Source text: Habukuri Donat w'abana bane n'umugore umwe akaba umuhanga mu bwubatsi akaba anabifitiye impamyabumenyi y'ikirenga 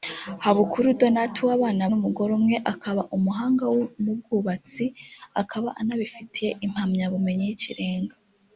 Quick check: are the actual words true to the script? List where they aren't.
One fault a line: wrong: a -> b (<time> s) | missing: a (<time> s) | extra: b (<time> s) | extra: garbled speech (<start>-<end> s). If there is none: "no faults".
missing: bane (1.8 s)